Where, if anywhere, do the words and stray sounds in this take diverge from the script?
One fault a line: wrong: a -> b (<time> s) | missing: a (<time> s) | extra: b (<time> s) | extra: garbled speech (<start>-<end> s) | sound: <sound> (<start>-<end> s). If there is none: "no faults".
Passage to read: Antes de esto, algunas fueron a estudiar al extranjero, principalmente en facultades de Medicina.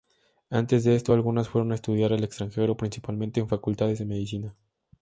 no faults